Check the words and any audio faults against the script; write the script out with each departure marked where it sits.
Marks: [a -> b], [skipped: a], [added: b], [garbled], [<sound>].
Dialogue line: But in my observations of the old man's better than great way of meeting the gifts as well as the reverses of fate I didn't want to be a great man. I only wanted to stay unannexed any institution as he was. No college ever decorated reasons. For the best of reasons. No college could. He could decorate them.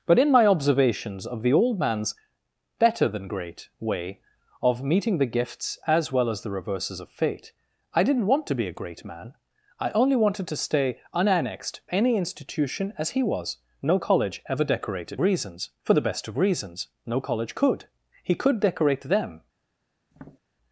But in my observations of the old man's better than great way of meeting the gifts as well as the reverses of fate I didn't want to be a great man. I only wanted to stay unannexed any institution as he was. No college ever decorated reasons. For the best of reasons. No college could. He could decorate them. [tap]